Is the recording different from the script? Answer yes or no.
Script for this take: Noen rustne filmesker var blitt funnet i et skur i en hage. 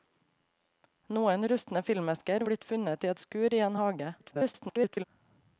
yes